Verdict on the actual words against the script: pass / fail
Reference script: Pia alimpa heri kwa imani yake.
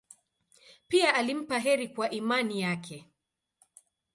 pass